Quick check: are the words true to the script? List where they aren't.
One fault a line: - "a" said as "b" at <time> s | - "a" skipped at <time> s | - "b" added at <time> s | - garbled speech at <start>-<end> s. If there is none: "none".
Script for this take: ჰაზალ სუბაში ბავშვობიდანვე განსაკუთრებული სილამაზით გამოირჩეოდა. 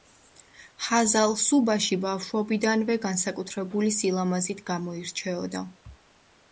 none